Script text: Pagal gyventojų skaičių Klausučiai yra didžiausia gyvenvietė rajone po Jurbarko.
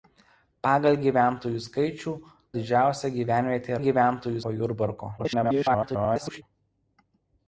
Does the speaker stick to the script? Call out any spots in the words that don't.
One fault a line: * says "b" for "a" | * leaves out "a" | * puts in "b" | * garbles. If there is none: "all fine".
* leaves out "Klausučiai yra"
* says "gyventojų" for "rajone"
* garbles